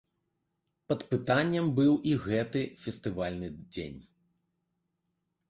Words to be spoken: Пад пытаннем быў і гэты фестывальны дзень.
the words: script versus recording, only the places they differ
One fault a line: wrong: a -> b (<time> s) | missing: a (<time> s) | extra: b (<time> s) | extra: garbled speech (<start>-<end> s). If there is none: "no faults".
no faults